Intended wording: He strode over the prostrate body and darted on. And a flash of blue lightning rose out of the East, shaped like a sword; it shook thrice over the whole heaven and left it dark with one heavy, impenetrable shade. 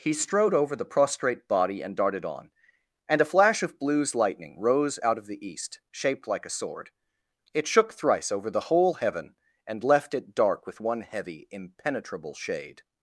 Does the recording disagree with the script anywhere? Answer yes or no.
yes